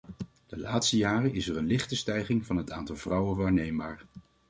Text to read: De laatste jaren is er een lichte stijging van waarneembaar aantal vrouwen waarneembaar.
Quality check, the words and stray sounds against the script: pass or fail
fail